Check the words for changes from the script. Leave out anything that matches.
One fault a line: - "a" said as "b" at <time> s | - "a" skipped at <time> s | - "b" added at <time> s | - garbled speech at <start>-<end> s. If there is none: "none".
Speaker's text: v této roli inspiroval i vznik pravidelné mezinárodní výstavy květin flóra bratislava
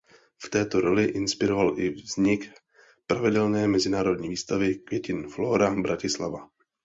none